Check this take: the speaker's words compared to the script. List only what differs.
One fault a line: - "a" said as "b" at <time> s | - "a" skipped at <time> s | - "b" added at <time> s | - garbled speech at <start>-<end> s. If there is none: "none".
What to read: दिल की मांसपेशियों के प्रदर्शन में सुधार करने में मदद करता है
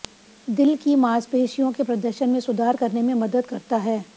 none